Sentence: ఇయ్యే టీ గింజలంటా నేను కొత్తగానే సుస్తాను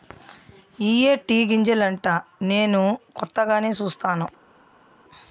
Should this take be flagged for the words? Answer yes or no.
no